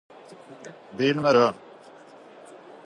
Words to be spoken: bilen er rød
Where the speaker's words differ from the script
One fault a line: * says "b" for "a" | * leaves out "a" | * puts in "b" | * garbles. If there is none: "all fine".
all fine